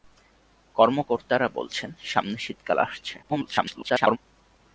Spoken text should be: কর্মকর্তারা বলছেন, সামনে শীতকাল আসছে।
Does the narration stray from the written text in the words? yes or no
yes